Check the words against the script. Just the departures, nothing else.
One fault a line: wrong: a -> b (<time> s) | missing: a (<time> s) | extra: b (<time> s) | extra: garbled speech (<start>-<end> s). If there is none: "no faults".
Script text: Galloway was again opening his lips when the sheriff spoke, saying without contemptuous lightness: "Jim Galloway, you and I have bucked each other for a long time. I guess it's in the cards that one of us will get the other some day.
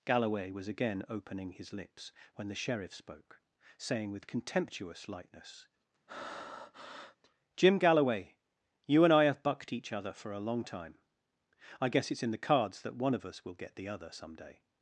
wrong: without -> with (4.1 s)